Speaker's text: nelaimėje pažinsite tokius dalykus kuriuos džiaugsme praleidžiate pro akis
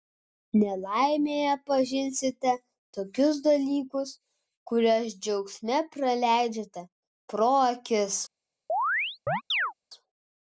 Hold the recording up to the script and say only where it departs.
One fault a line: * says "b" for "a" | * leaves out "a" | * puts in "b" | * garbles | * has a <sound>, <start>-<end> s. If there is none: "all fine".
* has a chirp, 8.7-9.7 s